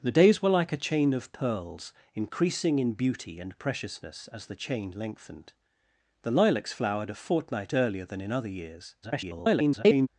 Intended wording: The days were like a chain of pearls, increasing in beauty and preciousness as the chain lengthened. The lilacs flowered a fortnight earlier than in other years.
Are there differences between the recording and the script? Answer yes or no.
yes